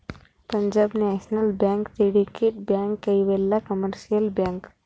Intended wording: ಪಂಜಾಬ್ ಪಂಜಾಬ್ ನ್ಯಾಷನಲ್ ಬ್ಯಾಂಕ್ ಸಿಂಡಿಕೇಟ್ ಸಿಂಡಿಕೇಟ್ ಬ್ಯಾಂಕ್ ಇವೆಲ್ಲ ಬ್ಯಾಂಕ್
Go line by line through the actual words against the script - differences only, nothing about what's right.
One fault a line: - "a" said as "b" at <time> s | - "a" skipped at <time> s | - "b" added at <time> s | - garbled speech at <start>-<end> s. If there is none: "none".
- "ಪಂಜಾಬ್" skipped at 0.9 s
- "ಸಿಂಡಿಕೇಟ್" skipped at 2.6 s
- "ಕಮರ್ಶಿಯಲ್" added at 3.7 s